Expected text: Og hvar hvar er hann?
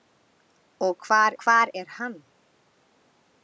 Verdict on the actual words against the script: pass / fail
pass